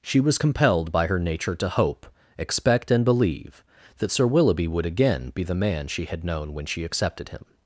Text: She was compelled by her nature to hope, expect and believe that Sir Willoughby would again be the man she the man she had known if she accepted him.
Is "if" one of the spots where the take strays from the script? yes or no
yes